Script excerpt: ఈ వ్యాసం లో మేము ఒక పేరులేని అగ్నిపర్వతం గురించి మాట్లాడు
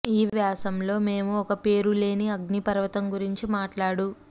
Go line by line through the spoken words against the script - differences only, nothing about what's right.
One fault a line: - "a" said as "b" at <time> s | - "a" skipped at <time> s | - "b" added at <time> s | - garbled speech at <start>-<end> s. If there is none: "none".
none